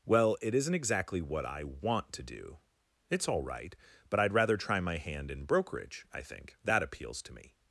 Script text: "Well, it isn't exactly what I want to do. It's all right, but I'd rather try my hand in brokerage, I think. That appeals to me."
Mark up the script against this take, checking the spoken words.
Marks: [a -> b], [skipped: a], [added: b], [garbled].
"Well, it isn't exactly what I want to do. It's all right, but I'd rather try my hand in brokerage, I think. That appeals to me."